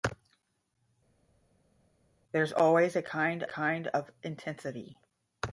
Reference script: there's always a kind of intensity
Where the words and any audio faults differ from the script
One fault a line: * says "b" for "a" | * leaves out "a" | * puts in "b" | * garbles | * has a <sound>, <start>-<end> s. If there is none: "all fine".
* puts in "kind"